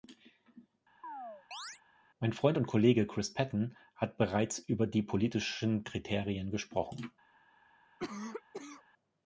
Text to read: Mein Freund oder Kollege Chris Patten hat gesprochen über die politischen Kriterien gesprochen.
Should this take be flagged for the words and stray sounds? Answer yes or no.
yes